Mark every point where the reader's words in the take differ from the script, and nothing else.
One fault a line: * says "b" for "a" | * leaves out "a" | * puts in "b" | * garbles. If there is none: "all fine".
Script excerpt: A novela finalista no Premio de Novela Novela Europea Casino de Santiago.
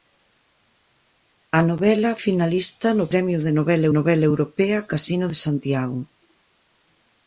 all fine